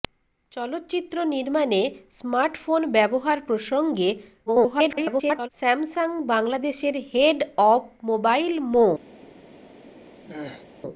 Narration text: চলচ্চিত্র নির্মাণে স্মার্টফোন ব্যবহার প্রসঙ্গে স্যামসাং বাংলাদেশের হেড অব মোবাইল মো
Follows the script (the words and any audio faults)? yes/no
no